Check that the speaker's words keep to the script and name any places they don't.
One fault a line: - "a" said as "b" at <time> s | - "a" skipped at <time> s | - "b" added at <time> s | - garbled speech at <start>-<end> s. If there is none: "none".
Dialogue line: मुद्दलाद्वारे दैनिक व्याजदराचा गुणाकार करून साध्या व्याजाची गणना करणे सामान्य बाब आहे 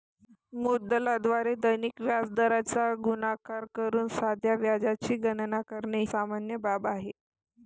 none